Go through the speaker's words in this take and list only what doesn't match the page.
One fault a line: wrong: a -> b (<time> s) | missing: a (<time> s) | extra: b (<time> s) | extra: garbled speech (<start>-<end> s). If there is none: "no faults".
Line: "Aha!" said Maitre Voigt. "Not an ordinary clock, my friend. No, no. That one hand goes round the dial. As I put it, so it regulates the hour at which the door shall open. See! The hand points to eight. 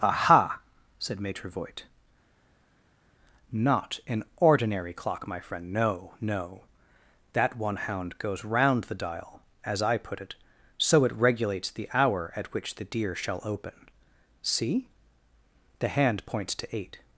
wrong: hand -> hound (7.8 s)
wrong: door -> deer (12.8 s)